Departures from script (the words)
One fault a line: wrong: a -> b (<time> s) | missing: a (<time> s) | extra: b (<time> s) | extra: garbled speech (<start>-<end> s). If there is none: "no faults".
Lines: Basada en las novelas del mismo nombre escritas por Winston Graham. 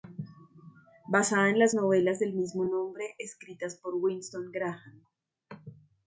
no faults